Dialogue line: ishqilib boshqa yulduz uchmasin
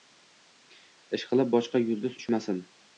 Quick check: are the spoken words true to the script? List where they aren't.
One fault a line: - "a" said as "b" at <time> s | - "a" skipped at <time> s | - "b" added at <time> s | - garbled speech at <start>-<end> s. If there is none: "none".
none